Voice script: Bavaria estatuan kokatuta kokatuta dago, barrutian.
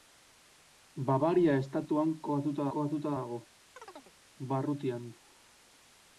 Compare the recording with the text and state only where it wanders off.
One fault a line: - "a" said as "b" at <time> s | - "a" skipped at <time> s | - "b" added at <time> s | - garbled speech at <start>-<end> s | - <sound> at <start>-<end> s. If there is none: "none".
- chirp at 3.8-4.1 s